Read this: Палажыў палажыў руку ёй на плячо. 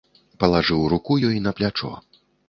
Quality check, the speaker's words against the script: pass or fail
fail